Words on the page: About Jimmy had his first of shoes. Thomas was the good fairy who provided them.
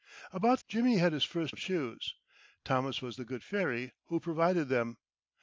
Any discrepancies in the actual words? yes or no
no